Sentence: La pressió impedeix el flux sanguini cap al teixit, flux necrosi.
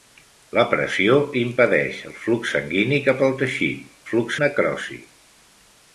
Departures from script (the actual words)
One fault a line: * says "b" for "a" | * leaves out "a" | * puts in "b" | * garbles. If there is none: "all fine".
all fine